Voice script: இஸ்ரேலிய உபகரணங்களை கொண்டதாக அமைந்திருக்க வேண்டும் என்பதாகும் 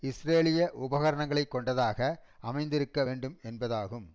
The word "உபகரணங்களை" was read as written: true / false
true